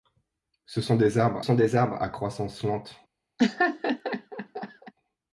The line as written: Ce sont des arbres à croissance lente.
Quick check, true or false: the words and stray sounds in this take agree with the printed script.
false